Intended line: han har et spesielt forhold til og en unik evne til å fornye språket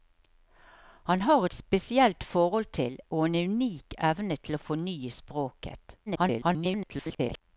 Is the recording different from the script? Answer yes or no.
yes